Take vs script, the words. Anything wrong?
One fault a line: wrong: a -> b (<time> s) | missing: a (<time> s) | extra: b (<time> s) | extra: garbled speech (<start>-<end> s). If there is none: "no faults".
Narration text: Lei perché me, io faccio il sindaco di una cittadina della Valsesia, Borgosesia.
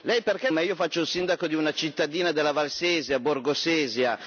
no faults